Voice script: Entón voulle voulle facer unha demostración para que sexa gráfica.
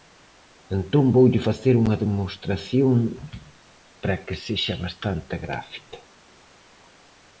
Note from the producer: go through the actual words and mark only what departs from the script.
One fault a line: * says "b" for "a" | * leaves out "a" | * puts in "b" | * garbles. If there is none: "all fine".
* leaves out "voulle"
* puts in "bastante"